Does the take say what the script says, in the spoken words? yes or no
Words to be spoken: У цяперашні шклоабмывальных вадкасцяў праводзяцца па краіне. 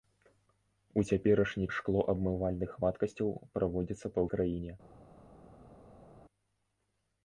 yes